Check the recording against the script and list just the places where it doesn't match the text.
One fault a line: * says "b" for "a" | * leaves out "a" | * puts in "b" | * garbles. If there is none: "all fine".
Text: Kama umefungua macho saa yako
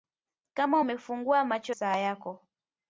all fine